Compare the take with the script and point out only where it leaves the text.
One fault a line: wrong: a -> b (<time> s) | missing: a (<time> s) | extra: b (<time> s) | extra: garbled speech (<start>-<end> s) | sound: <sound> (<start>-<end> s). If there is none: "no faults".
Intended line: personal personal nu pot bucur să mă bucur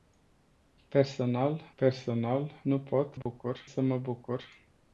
sound: dropout (3.2-3.3 s)